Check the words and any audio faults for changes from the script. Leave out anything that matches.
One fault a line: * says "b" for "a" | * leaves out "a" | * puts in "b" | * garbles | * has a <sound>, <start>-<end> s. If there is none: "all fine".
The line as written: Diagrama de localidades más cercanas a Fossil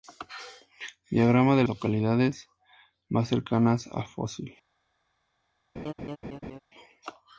* has a laugh, 5.8-6.6 s